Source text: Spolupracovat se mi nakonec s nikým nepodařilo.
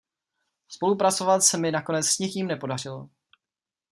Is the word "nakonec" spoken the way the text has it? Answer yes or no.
yes